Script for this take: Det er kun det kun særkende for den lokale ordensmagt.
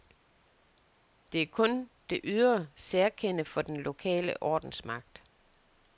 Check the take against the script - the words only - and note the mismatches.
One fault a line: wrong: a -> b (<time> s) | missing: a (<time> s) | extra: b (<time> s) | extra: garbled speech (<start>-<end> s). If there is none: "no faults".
wrong: kun -> ydre (2.2 s)